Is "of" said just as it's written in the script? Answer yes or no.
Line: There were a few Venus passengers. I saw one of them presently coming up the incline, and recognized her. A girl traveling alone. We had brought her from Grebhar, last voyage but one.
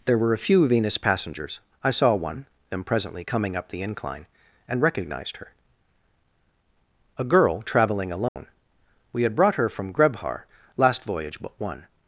no